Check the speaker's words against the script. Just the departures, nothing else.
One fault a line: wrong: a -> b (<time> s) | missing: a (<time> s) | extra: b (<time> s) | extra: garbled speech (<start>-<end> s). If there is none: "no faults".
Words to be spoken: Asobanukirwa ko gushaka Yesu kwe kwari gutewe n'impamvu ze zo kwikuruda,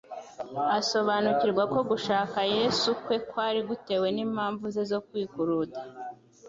no faults